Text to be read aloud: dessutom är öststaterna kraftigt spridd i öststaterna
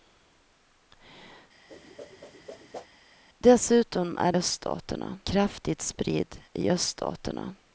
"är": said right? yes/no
yes